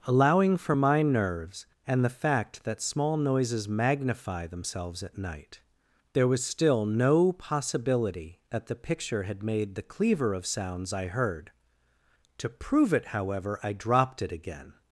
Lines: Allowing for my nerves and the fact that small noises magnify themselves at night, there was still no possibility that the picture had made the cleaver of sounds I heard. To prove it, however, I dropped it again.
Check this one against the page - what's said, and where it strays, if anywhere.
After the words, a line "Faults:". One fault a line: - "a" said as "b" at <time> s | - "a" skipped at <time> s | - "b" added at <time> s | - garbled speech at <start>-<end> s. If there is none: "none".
Allowing for my nerves and the fact that small noises magnify themselves at night, there was still no possibility that the picture had made the cleaver of sounds I heard. To prove it, however, I dropped it again.
Faults:
none